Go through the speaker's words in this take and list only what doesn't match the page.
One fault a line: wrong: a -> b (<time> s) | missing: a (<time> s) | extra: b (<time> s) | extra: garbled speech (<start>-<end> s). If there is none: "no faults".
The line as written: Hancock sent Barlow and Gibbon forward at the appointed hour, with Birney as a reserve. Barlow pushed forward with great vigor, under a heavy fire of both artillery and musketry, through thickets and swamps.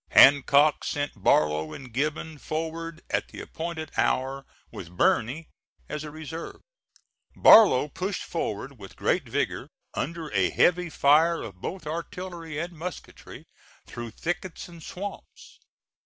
no faults